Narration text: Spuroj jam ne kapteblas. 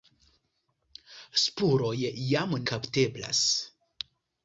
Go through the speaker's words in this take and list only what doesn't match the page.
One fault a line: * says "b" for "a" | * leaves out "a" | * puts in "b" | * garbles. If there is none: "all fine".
* leaves out "ne"